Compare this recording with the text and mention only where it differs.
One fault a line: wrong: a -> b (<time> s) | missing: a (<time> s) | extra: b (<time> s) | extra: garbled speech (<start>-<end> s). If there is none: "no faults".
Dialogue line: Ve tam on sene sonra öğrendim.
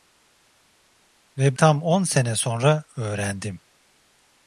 no faults